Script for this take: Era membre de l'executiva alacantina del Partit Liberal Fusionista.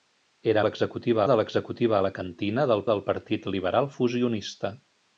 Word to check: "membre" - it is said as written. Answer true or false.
false